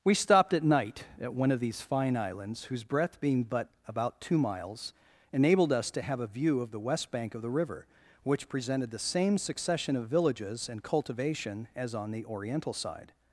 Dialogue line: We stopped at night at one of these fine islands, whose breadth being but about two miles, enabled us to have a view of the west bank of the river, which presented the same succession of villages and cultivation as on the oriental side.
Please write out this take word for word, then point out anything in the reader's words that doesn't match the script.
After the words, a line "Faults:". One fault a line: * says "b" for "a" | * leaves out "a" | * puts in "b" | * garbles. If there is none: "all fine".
We stopped at night at one of these fine islands, whose breadth being but about two miles, enabled us to have a view of the west bank of the river, which presented the same succession of villages and cultivation as on the oriental side.
Faults:
all fine